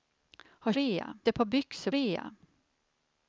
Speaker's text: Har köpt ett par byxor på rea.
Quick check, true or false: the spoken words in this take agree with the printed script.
false